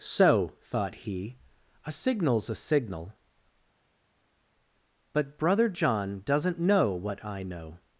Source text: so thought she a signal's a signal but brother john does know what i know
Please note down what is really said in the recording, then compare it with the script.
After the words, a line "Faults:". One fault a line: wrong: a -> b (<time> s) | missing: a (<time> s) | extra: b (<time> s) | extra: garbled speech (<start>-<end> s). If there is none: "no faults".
so thought he a signal's a signal but brother john doesn't know what i know
Faults:
wrong: she -> he (0.9 s)
wrong: does -> doesn't (6.2 s)